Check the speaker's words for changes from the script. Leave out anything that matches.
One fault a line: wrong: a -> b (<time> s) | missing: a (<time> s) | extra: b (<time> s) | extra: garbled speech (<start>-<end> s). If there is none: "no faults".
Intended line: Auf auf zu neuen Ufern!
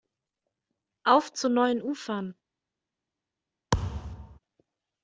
missing: auf (1.3 s)